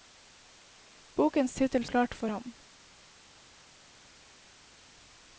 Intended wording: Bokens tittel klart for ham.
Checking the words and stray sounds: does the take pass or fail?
pass